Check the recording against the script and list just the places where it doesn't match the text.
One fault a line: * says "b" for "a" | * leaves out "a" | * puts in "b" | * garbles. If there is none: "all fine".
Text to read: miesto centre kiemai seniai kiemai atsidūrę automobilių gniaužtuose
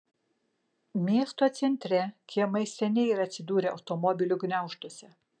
* says "yra" for "kiemai"